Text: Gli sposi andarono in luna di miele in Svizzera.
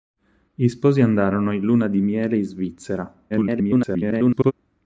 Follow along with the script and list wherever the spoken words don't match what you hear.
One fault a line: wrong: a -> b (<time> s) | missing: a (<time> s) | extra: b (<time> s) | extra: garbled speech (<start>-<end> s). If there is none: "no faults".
extra: garbled speech (3.3-4.5 s)